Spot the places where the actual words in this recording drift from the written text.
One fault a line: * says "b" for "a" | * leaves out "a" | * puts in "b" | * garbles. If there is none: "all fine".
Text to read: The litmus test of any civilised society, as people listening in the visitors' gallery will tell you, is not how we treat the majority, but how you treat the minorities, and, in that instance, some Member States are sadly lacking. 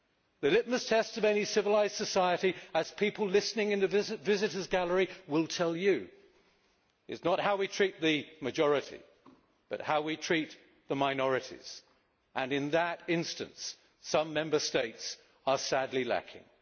* says "we" for "you"